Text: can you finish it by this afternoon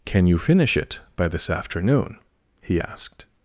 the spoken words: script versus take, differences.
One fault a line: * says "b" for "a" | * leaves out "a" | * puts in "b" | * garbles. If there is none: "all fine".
* puts in "he asked"